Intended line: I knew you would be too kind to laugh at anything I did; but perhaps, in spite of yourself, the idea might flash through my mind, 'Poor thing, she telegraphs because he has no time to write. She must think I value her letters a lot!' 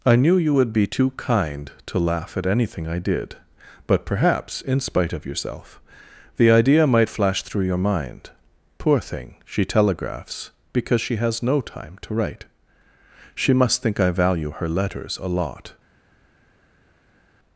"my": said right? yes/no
no